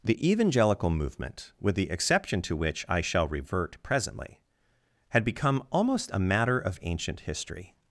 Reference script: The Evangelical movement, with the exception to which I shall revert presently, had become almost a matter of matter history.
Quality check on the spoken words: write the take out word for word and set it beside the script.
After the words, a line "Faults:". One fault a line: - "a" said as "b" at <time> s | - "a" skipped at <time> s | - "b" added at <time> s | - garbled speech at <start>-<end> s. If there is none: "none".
The Evangelical movement, with the exception to which I shall revert presently, had become almost a matter of ancient history.
Faults:
- "matter" said as "ancient" at 6.8 s